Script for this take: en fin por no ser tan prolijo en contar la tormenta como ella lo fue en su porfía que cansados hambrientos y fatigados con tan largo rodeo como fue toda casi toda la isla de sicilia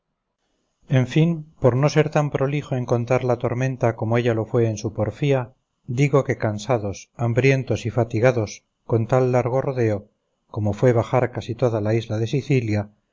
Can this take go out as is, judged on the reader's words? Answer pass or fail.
fail